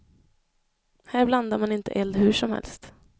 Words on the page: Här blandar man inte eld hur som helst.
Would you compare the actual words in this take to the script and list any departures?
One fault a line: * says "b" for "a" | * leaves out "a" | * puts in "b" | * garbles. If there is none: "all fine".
all fine